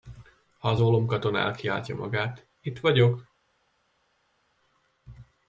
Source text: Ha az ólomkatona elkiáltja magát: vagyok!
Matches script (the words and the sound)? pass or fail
fail